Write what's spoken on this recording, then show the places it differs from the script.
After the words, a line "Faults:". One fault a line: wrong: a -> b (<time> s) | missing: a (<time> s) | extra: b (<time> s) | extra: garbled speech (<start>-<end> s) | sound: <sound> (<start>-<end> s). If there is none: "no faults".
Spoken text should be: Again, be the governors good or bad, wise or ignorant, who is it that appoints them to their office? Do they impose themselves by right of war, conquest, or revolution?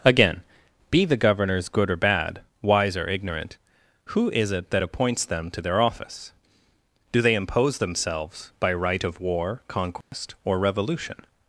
Again, be the governors good or bad, wise or ignorant, who is it that appoints them to their office? Do they impose themselves by right of war, conquest, or revolution?
Faults:
sound: dropout (10.0-10.1 s)